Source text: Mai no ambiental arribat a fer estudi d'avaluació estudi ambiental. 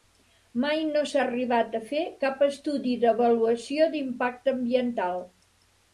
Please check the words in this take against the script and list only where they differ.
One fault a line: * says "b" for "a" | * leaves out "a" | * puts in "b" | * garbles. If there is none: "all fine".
* says "s'ha" for "ambiental"
* puts in "cap"
* says "d'impacte" for "estudi"